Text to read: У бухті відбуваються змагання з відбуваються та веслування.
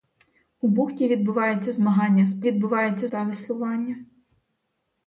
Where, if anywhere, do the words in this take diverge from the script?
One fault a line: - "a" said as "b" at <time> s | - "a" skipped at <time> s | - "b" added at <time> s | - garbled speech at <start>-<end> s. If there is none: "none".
none